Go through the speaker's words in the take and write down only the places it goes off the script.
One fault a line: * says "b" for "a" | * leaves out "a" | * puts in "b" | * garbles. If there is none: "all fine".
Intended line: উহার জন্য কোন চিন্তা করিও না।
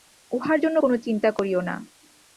all fine